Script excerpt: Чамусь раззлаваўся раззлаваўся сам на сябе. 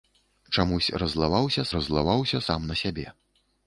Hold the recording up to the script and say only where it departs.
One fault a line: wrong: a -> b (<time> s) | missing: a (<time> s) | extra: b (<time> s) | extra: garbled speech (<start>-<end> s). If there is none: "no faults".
no faults